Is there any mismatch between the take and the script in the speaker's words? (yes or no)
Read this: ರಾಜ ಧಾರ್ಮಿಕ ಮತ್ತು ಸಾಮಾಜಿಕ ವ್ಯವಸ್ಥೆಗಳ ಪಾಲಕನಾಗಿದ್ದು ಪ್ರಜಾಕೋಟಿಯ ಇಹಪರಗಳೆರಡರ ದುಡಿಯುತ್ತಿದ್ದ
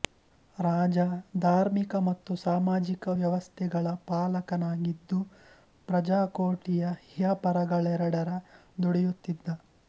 no